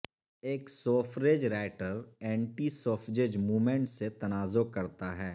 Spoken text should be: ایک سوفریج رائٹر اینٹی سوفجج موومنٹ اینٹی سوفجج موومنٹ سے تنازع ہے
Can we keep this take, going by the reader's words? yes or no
no